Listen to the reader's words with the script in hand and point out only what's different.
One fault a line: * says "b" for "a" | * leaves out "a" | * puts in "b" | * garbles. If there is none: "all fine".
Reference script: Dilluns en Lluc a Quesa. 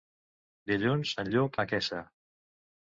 all fine